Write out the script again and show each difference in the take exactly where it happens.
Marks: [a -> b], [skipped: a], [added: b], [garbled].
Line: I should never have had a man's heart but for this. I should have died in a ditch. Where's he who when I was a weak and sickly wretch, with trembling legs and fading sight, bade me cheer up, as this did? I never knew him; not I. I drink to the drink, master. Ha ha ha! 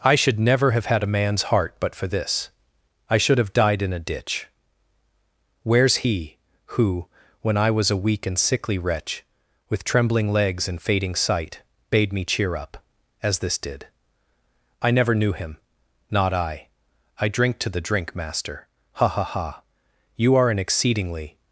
I should never have had a man's heart but for this. I should have died in a ditch. Where's he who when I was a weak and sickly wretch, with trembling legs and fading sight, bade me cheer up, as this did? I never knew him; not I. I drink to the drink, master. Ha ha ha! [added: You are an exceedingly]